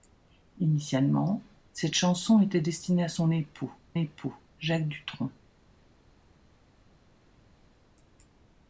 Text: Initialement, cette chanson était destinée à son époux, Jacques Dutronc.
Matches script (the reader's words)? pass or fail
fail